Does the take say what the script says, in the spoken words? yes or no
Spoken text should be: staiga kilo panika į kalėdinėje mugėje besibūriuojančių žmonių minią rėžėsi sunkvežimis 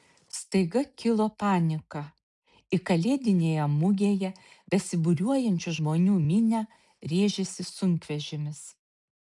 yes